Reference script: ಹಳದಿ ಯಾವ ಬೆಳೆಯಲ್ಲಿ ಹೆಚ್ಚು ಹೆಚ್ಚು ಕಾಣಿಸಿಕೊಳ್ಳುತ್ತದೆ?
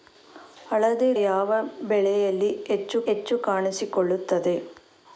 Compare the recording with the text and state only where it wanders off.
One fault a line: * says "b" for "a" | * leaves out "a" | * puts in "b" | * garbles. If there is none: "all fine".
all fine